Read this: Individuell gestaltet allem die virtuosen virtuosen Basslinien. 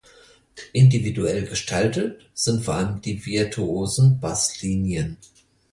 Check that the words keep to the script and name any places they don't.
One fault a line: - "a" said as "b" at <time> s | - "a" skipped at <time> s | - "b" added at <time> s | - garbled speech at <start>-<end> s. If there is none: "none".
- "sind vor" added at 2.3 s
- "virtuosen" skipped at 4.2 s